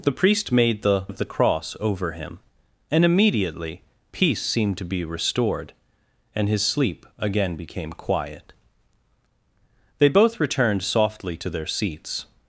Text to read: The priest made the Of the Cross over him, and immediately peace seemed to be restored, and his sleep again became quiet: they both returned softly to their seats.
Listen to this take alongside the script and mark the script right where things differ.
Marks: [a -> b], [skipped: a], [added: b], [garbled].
The priest made the Of the Cross over him, and immediately peace seemed to be restored, and his sleep again became quiet: they both returned softly to their seats.